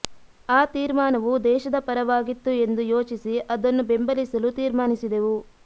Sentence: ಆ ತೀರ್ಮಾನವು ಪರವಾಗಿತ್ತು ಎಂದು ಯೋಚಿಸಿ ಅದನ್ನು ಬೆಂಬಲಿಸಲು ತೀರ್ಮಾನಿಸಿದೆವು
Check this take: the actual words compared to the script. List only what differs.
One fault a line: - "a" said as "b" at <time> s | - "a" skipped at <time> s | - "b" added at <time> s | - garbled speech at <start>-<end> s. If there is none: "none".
- "ದೇಶದ" added at 1.4 s